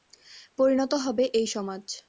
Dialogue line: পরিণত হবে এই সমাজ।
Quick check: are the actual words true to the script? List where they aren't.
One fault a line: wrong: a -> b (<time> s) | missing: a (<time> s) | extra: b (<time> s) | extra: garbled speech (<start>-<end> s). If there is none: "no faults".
no faults